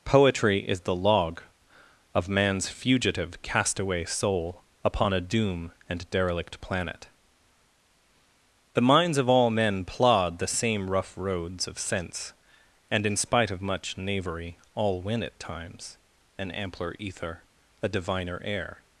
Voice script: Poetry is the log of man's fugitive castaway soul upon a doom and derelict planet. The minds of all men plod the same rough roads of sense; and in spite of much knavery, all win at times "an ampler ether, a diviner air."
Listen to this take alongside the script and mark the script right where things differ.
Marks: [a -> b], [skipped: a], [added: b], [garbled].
Poetry is the log of man's fugitive castaway soul upon a doom and derelict planet. The minds of all men plod the same rough roads of sense; and in spite of much knavery, all win at times "an ampler ether, a diviner air."